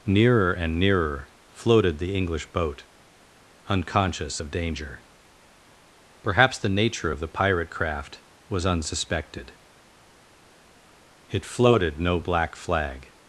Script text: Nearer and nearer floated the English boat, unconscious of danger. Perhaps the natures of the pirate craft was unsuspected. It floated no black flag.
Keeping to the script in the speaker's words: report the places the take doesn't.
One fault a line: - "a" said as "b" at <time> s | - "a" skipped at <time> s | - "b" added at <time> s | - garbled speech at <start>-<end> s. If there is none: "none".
- "natures" said as "nature" at 6.7 s